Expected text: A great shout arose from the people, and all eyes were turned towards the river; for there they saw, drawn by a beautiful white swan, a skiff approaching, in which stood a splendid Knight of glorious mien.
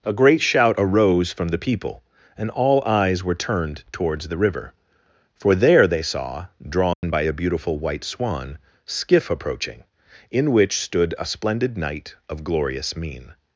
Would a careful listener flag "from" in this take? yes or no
no